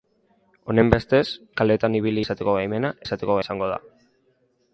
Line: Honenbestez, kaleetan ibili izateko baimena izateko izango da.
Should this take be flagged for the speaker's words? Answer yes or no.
no